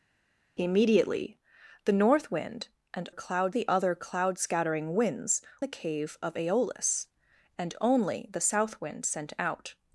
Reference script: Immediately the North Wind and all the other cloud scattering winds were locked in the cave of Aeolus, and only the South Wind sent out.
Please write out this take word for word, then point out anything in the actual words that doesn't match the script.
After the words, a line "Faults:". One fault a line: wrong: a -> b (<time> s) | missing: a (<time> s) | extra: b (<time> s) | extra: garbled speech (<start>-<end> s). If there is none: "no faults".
Immediately the North Wind and cloud the other cloud scattering winds the cave of Aeolus, and only the South Wind sent out.
Faults:
wrong: all -> cloud (3.1 s)
missing: were locked in (5.4 s)